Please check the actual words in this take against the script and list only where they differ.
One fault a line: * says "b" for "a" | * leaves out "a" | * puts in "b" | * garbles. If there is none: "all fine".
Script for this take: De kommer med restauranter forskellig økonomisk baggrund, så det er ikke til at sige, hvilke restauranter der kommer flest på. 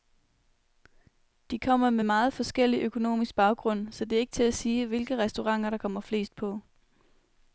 * says "meget" for "restauranter"